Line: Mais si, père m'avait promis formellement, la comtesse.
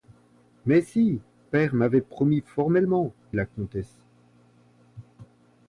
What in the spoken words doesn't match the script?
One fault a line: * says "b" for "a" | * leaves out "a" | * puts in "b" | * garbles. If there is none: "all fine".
all fine